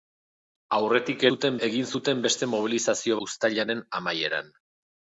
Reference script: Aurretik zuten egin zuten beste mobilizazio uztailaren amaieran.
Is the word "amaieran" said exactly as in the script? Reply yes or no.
yes